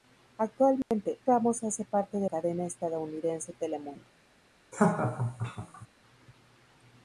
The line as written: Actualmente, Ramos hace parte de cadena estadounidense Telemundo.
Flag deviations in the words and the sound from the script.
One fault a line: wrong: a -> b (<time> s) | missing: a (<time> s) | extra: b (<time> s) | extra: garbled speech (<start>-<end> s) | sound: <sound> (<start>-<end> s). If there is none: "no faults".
sound: dropout (0.8-0.9 s)
sound: laugh (4.7-5.9 s)